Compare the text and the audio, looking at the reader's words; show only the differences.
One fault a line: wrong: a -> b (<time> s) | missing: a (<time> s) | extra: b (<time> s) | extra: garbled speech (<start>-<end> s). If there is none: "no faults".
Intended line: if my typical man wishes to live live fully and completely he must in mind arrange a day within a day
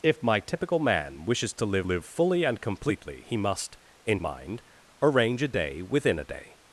no faults